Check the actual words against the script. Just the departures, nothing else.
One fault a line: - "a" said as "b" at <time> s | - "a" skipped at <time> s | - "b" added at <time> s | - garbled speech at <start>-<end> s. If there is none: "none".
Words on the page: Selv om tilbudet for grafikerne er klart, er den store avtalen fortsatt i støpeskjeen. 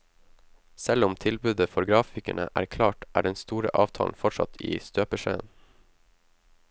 none